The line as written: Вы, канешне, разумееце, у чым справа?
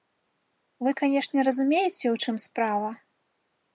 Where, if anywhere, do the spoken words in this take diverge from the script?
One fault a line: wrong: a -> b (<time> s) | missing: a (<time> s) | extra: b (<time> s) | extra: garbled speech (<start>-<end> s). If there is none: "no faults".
no faults